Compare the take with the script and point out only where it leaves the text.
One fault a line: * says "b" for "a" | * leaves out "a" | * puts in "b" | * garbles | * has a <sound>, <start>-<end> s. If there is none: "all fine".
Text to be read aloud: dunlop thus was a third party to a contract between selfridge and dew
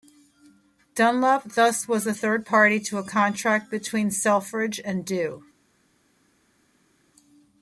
all fine